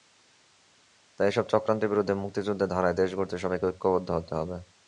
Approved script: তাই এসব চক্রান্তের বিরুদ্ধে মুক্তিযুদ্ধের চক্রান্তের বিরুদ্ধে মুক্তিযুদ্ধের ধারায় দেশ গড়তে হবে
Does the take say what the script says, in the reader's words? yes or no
no